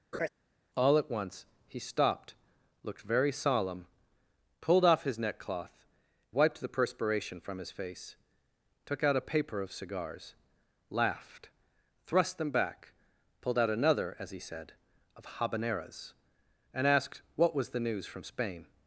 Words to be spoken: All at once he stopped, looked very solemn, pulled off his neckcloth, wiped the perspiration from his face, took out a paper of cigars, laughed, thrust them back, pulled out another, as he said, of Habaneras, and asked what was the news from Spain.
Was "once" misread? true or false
false